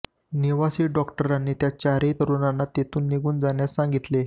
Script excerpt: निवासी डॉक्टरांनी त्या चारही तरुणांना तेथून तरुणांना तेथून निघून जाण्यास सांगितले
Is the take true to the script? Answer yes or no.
no